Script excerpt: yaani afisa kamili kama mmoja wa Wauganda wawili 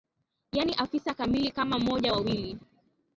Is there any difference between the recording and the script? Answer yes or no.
yes